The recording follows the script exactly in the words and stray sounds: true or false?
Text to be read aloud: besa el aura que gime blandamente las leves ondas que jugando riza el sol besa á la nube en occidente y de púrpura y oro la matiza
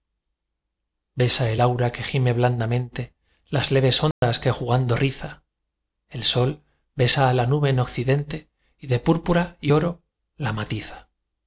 false